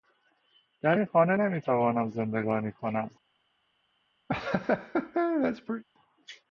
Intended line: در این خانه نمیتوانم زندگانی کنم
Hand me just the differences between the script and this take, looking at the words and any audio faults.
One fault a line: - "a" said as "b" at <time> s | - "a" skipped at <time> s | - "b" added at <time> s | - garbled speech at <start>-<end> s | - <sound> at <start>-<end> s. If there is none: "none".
- laugh at 4.3-5.8 s